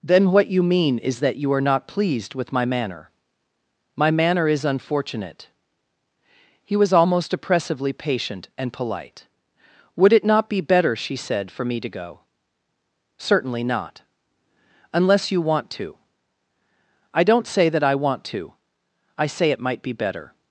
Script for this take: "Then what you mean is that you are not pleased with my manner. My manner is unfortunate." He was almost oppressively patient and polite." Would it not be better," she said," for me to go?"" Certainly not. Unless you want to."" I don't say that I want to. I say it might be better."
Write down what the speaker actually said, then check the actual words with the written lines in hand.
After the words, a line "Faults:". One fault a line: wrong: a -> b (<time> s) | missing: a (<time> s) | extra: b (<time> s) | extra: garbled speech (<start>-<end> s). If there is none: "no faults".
"Then what you mean is that you are not pleased with my manner. My manner is unfortunate." He was almost oppressively patient and polite." Would it not be better," she said," for me to go?"" Certainly not. Unless you want to."" I don't say that I want to. I say it might be better."
Faults:
no faults